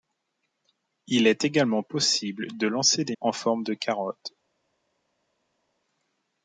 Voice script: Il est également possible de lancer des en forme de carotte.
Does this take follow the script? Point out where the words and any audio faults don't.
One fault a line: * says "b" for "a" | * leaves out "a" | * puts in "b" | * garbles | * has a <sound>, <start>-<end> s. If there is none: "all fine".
all fine